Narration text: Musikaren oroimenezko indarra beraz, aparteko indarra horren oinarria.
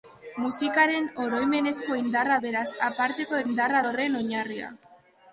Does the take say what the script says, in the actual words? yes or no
yes